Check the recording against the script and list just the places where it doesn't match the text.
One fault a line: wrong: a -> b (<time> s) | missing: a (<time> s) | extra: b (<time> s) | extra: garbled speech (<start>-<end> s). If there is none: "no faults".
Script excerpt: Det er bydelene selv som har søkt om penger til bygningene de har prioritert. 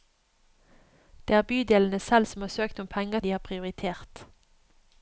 missing: til bygningene (3.2 s)